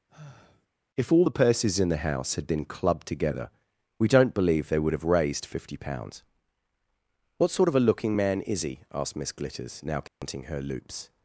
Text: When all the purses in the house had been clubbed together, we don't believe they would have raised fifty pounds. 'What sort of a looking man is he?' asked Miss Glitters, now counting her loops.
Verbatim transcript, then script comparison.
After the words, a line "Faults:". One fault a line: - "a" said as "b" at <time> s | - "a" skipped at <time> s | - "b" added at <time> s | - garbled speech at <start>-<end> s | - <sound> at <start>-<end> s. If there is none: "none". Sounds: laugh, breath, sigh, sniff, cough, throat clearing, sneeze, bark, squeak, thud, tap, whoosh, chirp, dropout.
If all the purses in the house had been clubbed together, we don't believe they would have raised fifty pounds. 'What sort of a looking man is he?' asked Miss Glitters, now counting her loops.
Faults:
- sigh at 0.1-0.7 s
- "When" said as "If" at 0.9 s
- dropout at 10.1-10.2 s